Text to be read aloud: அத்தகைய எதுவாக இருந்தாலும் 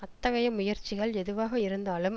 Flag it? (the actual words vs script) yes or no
yes